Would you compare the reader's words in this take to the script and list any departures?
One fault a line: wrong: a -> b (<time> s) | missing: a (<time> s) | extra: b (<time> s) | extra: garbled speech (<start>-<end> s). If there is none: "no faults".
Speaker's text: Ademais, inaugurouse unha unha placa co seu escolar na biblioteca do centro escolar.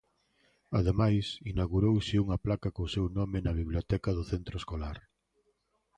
missing: unha (2.4 s)
wrong: escolar -> nome (3.2 s)